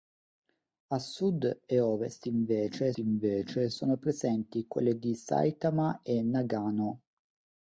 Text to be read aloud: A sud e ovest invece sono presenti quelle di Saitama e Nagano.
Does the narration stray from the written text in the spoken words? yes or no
yes